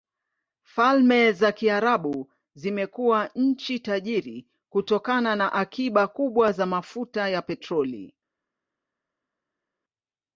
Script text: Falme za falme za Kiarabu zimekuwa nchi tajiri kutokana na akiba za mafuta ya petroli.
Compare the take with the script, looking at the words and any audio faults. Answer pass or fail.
fail